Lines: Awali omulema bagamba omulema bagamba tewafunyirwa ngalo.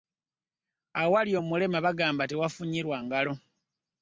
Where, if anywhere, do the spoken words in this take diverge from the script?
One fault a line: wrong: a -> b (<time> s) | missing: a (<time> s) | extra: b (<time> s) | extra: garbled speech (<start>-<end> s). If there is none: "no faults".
missing: omulema bagamba (2.2 s)